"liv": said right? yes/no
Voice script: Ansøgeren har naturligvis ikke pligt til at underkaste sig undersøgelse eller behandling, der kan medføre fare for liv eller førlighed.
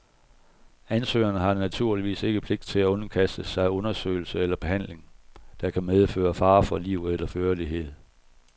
yes